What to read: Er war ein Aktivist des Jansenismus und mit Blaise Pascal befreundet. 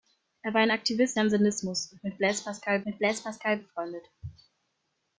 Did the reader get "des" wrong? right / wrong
wrong